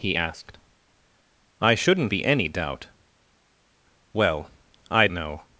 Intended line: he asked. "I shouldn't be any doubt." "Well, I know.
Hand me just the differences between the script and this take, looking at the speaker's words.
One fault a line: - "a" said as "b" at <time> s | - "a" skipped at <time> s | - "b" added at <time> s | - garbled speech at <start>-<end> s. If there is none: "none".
none